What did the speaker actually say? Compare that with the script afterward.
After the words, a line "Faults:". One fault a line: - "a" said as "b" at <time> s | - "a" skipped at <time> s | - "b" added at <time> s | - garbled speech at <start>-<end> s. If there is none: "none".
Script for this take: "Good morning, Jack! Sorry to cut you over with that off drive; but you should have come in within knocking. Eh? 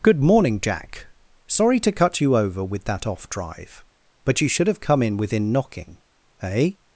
"Good morning, Jack! Sorry to cut you over with that off drive; but you should have come in within knocking. Eh?
Faults:
none